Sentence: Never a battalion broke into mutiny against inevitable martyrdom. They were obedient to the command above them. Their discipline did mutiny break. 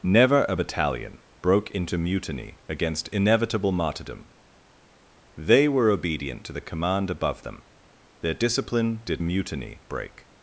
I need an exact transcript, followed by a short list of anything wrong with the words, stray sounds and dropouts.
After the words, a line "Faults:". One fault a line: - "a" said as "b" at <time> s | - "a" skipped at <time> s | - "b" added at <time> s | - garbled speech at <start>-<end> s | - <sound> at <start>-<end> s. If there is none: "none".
Never a battalion broke into mutiny against inevitable martyrdom. They were obedient to the command above them. Their discipline did mutiny break.
Faults:
none